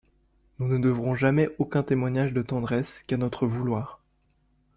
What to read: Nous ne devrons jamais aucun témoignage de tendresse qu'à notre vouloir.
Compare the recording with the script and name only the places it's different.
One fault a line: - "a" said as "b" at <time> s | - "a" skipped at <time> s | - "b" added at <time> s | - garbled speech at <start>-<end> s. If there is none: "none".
none